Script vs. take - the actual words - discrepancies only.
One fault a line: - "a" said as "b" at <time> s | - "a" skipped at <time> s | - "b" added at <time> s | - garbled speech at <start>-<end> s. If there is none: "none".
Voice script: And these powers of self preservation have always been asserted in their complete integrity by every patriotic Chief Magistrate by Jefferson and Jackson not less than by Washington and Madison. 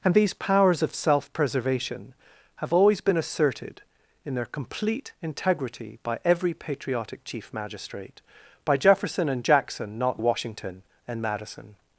- "less than by" skipped at 10.2 s